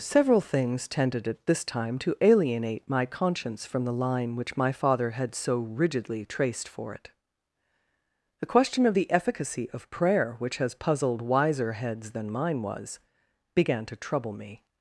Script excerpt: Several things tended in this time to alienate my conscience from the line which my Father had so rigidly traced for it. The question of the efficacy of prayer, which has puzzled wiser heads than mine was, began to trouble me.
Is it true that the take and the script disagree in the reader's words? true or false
true